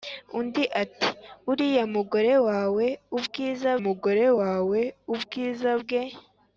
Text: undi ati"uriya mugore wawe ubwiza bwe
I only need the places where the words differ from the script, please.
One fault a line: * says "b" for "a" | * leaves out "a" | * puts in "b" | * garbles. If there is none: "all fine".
* puts in "mugore wawe ubwiza"